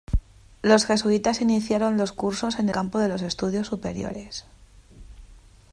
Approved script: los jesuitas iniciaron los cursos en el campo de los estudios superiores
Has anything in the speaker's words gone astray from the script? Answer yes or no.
yes